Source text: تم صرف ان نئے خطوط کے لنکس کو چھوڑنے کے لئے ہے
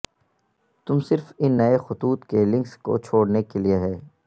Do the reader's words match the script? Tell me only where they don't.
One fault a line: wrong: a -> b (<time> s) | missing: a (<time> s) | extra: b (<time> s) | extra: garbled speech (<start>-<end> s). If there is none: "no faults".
no faults